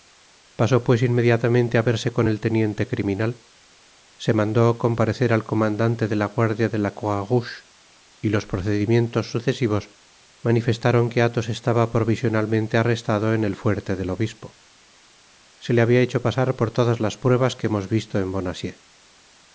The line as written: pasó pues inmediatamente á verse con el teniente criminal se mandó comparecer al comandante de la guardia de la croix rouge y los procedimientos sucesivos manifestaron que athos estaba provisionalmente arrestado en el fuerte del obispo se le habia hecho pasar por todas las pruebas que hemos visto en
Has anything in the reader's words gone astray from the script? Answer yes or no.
no